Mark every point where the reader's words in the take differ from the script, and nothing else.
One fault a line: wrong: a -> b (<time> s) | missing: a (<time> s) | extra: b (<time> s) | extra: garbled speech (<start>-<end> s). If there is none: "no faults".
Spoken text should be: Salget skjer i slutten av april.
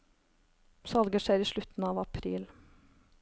no faults